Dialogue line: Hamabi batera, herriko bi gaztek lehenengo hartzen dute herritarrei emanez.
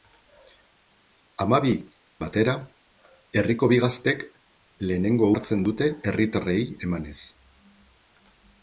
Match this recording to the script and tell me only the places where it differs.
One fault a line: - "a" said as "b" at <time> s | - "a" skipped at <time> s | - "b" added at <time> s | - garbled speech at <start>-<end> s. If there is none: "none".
none